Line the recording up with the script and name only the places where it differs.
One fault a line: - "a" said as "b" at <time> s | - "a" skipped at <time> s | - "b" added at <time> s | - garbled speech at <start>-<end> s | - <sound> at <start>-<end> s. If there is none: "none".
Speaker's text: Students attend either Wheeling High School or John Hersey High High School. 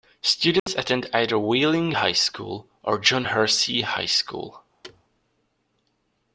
- dropout at 0.6-0.7 s
- "High" skipped at 4.0 s
- thud at 4.8-5.0 s